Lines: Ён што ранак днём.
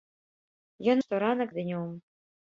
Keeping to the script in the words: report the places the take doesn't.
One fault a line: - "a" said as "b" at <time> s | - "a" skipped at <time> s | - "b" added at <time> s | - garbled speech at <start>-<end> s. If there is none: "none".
none